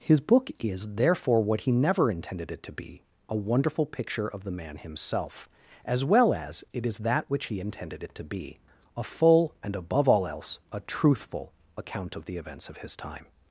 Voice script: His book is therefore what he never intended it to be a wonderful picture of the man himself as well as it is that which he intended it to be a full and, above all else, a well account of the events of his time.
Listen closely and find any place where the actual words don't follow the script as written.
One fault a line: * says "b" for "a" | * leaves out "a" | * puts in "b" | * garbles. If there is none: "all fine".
* says "truthful" for "well"